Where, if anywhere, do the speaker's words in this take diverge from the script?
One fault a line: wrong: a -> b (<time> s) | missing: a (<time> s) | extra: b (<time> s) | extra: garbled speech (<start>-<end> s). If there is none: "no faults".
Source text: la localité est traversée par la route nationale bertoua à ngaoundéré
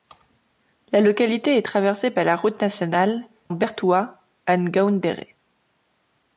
no faults